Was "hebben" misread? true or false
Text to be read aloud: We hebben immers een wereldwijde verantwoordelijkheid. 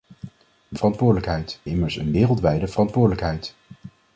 true